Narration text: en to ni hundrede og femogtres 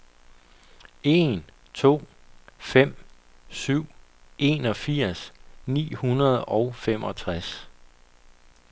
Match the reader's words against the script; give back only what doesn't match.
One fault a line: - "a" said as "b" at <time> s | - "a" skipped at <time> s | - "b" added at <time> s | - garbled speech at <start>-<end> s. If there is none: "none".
- "fem syv enogfirs" added at 2.6 s